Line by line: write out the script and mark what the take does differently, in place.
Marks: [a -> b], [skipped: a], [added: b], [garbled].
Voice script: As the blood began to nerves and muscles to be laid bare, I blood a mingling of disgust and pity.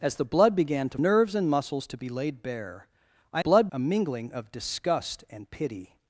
As the blood began to nerves and muscles to be laid bare, I blood a mingling of disgust and pity.